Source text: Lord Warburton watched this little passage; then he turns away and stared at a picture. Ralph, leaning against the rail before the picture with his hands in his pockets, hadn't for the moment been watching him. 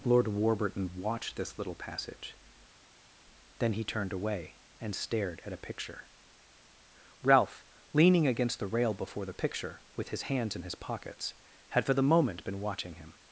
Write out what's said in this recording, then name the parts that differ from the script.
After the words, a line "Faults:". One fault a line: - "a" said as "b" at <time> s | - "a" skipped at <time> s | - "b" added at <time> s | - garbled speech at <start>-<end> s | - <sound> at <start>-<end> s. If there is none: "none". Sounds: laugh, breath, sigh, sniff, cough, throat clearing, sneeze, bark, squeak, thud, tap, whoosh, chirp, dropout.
Lord Warburton watched this little passage; then he turned away and stared at a picture. Ralph, leaning against the rail before the picture with his hands in his pockets, had for the moment been watching him.
Faults:
- "turns" said as "turned" at 3.8 s
- "hadn't" said as "had" at 11.7 s